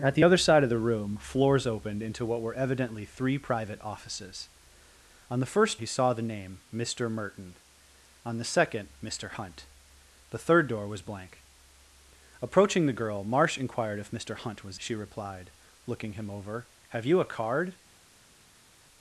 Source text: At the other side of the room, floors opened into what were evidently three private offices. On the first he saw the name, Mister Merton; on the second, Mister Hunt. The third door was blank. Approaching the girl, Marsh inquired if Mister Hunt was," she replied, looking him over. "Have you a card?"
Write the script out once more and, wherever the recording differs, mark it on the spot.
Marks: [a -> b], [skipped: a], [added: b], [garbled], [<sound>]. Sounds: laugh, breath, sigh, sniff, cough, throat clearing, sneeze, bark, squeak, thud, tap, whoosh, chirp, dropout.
At the other side of the room, floors opened into what were evidently three private offices. On the first he saw the name, Mister Merton; on the second, Mister Hunt. The third door was blank. Approaching the girl, Marsh inquired if Mister Hunt was," she replied, looking him over. "Have you a card?"